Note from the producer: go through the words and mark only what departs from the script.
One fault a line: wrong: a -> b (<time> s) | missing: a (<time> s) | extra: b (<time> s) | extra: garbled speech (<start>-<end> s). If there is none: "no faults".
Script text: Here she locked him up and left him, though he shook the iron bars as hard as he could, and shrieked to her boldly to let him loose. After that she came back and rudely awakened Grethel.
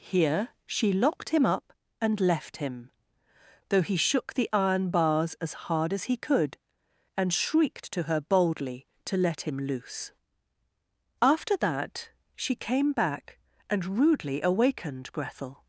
no faults